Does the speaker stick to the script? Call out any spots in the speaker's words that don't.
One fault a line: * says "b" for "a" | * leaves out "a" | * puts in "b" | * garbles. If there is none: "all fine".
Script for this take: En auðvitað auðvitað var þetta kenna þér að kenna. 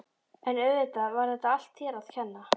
* leaves out "auðvitað"
* says "allt" for "kenna"